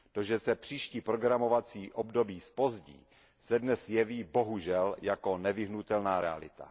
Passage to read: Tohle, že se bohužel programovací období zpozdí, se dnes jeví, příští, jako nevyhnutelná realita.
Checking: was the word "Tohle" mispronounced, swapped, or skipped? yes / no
yes